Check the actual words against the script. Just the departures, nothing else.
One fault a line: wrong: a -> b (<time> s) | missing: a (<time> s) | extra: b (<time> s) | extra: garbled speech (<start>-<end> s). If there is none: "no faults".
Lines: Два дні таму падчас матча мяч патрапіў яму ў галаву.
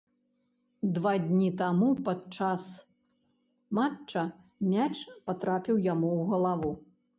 no faults